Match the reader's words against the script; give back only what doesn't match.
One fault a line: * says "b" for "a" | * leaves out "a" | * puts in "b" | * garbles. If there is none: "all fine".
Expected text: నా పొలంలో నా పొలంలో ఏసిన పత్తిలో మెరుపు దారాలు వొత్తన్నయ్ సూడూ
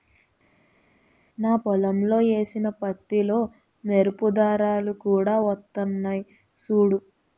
* leaves out "నా పొలంలో"
* puts in "కూడా"